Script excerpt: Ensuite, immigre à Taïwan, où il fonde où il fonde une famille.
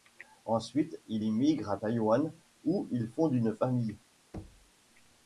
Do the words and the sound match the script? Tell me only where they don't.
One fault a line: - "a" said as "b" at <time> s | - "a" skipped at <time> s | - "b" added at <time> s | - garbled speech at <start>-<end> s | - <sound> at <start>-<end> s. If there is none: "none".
- "il" added at 1.1 s
- "où il fonde" skipped at 3.3 s
- thud at 4.3-4.7 s